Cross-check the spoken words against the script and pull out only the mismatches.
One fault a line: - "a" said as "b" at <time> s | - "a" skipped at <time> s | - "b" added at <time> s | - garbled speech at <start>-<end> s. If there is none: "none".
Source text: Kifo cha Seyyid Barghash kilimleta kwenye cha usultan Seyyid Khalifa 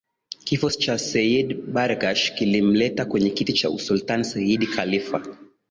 - "kiti" added at 3.3 s